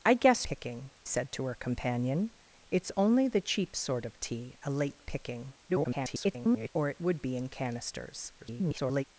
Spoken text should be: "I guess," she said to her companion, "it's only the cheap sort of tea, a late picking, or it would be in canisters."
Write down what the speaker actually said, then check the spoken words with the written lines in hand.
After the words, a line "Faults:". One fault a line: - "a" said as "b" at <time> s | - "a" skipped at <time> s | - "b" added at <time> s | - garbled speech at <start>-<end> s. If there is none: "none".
"I guess," picking said to her companion, "it's only the cheap sort of tea, a late picking, [garbled] or it would be in canisters." [garbled]
Faults:
- "she" said as "picking" at 0.4 s
- garbled speech at 5.7-6.7 s
- garbled speech at 8.4-9.0 s